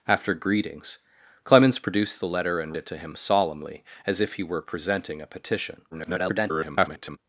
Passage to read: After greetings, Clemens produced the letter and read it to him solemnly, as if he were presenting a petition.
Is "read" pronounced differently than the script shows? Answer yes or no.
yes